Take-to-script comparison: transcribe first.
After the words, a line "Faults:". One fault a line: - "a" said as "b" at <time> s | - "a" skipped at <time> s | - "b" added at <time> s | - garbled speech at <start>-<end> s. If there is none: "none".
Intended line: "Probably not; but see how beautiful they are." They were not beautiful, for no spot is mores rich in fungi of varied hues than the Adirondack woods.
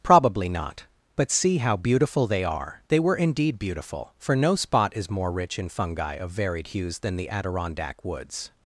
"Probably not; but see how beautiful they are." They were indeed beautiful, for no spot is more rich in fungi of varied hues than the Adirondack woods.
Faults:
- "not" said as "indeed" at 3.1 s
- "mores" said as "more" at 5.1 s